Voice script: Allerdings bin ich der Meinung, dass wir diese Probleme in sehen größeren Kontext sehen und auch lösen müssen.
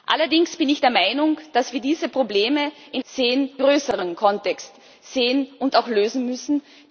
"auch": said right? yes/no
yes